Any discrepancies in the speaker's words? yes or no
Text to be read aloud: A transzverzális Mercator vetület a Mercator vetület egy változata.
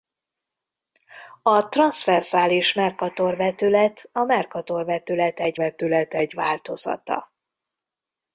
yes